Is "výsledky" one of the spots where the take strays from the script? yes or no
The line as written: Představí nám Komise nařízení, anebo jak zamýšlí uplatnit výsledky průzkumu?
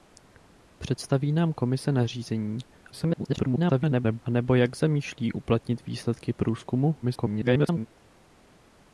no